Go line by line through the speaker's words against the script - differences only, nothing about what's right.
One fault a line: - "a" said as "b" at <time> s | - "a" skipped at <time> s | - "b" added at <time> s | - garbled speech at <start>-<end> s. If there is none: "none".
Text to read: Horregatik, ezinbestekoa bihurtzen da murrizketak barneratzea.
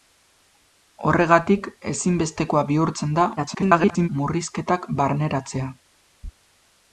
- garbled speech at 3.4-4.1 s